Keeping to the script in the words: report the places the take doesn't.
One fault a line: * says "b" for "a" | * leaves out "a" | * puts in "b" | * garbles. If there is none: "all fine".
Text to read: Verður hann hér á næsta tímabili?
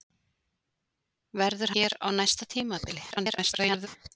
* leaves out "hann"
* garbles